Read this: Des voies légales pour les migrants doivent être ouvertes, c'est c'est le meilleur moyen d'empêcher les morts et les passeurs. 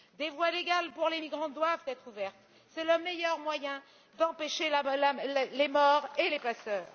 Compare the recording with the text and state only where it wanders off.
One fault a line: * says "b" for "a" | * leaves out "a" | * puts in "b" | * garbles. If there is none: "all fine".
* leaves out "c'est"